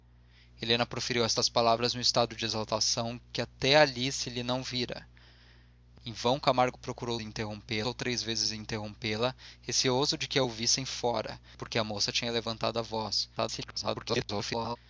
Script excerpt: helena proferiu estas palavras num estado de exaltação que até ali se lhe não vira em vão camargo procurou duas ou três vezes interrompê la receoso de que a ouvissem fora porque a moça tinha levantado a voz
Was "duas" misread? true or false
true